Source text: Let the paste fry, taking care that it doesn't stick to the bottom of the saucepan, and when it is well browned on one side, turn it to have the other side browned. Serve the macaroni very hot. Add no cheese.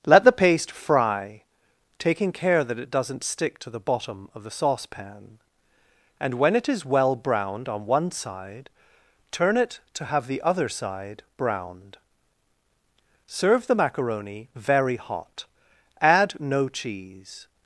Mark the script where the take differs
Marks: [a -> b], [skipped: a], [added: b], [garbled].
Let the paste fry, taking care that it doesn't stick to the bottom of the saucepan, and when it is well browned on one side, turn it to have the other side browned. Serve the macaroni very hot. Add no cheese.